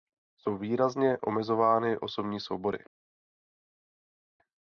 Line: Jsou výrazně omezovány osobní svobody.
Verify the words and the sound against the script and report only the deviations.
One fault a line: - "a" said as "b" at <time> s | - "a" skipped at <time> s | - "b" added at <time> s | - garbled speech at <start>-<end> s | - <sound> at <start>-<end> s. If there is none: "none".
none